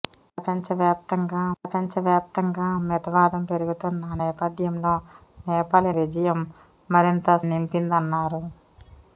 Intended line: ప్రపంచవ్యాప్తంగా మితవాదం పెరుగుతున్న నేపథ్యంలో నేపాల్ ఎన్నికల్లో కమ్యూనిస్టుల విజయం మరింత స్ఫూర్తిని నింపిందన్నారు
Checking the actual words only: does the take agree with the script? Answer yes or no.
no